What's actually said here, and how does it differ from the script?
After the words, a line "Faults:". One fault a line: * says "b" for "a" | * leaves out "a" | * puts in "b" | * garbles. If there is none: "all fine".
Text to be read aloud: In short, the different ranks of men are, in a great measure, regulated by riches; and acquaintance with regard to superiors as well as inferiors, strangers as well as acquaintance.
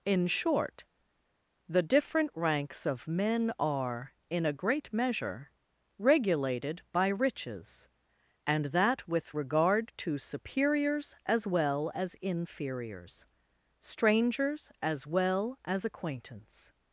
In short, the different ranks of men are, in a great measure, regulated by riches; and that with regard to superiors as well as inferiors, strangers as well as acquaintance.
Faults:
* says "that" for "acquaintance"